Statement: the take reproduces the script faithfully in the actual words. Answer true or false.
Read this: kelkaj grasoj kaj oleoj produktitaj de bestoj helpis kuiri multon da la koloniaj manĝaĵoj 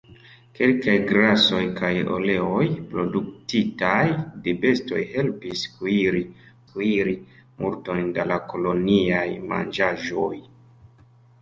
false